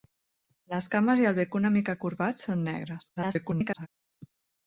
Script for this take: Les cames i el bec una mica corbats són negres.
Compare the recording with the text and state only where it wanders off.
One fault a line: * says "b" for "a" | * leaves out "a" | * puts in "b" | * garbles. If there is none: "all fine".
* garbles